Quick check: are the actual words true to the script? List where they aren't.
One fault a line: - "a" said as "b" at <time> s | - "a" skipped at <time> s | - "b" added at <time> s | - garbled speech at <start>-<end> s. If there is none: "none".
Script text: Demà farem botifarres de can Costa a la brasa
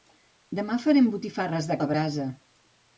- "can Costa" skipped at 1.8 s